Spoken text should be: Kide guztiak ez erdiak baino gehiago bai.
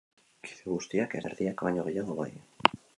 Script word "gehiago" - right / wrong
right